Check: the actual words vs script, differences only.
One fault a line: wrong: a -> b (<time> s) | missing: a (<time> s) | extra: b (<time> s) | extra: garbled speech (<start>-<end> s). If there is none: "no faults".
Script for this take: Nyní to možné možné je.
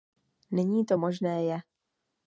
missing: možné (1.4 s)